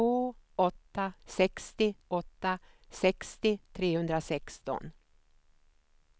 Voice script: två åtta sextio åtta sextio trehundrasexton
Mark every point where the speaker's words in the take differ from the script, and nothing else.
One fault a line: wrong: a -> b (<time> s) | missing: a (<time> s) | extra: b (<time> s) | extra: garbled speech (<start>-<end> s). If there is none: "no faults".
no faults